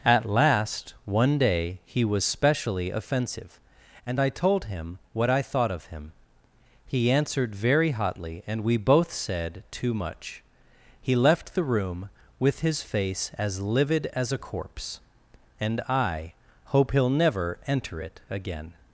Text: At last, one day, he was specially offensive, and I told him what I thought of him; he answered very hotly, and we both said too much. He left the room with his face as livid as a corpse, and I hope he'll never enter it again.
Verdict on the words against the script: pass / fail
pass